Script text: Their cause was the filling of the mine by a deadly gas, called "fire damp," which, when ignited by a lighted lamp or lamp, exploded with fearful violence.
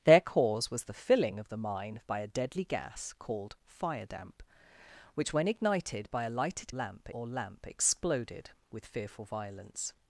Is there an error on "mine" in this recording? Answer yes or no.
no